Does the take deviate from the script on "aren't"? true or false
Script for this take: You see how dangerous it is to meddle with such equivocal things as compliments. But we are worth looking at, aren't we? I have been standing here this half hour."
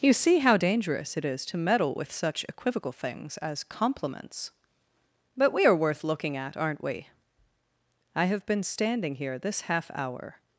false